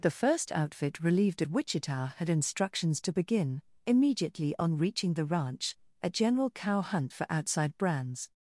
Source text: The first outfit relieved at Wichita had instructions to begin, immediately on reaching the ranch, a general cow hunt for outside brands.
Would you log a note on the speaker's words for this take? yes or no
yes